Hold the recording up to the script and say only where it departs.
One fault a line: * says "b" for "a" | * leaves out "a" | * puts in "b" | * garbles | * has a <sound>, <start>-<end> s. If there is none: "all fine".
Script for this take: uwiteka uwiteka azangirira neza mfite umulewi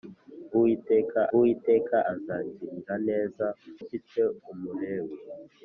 all fine